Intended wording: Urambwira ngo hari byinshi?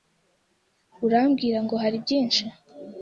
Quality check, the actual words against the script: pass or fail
pass